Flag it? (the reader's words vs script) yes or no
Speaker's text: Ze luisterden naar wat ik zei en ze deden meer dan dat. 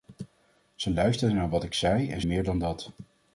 yes